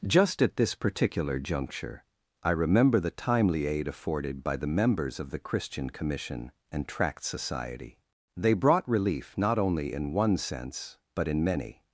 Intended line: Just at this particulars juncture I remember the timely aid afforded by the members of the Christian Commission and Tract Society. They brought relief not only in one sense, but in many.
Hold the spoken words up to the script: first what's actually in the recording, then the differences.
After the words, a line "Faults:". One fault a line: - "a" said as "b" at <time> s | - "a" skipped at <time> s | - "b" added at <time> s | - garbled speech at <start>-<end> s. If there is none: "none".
Just at this particular juncture I remember the timely aid afforded by the members of the Christian Commission and Tract Society. They brought relief not only in one sense, but in many.
Faults:
- "particulars" said as "particular" at 0.7 s